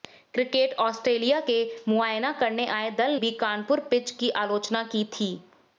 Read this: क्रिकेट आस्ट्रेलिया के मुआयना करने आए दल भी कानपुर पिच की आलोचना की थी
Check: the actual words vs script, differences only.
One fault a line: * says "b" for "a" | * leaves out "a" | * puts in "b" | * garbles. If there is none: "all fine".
all fine